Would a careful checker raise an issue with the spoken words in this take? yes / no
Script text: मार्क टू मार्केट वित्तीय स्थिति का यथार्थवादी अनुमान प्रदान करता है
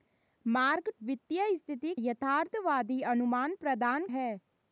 yes